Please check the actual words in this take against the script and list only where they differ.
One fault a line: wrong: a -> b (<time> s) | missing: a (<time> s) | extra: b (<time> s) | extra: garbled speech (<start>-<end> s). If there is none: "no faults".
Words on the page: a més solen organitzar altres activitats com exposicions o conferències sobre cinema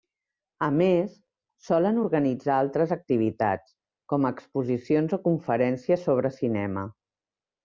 no faults